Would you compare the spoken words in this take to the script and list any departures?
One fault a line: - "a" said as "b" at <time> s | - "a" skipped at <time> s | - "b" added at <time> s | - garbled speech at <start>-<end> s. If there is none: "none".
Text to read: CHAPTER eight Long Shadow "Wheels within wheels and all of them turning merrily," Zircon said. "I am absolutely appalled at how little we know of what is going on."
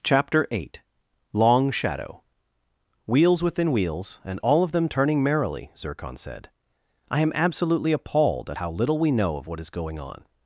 none